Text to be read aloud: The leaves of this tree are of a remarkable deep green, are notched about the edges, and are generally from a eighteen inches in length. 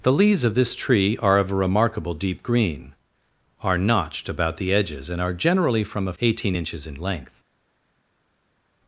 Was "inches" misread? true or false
false